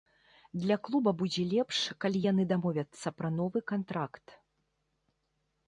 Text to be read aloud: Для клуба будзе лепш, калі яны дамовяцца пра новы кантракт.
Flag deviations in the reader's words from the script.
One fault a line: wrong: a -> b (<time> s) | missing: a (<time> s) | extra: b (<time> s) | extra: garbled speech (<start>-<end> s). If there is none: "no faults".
no faults